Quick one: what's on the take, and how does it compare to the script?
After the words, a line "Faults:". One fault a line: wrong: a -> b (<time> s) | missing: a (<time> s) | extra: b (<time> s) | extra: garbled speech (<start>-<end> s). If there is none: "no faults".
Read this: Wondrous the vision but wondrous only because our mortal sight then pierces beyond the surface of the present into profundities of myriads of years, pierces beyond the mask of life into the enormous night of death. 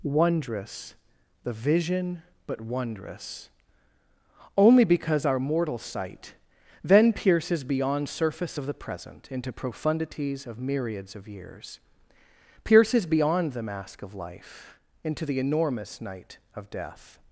Wondrous the vision but wondrous only because our mortal sight then pierces beyond surface of the present into profundities of myriads of years, pierces beyond the mask of life into the enormous night of death.
Faults:
missing: the (8.1 s)